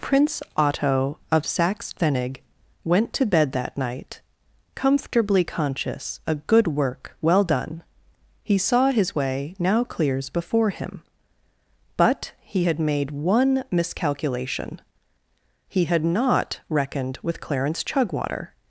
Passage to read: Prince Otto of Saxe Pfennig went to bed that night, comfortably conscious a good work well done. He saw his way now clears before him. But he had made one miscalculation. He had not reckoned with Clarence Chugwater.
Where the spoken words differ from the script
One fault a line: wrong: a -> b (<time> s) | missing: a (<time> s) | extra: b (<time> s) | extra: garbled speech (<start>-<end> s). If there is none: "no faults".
no faults